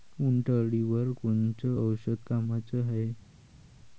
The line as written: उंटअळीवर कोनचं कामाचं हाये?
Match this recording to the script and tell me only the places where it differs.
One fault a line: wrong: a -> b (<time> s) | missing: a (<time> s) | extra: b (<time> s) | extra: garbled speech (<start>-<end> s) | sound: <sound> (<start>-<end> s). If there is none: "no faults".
extra: औषध (1.8 s)